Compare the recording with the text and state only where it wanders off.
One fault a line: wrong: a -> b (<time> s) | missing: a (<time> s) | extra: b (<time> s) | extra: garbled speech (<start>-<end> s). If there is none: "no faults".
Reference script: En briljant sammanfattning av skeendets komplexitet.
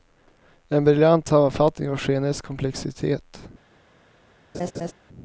no faults